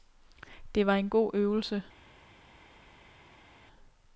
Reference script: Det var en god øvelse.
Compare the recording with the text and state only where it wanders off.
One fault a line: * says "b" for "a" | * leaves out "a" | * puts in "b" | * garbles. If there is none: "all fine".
all fine